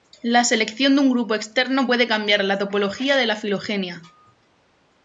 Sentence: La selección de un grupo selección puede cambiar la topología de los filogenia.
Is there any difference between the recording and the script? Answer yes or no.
yes